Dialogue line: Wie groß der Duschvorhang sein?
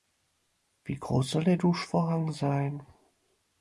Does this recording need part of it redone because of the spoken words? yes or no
yes